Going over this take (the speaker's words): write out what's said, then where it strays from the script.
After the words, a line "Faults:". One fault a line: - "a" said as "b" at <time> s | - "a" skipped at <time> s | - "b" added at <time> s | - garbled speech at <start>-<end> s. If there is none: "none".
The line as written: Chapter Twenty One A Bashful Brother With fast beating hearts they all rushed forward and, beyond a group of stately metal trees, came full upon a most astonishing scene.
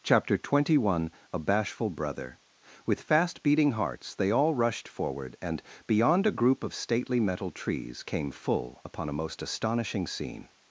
Chapter Twenty One A Bashful Brother With fast beating hearts they all rushed forward and, beyond a group of stately metal trees, came full upon a most astonishing scene.
Faults:
none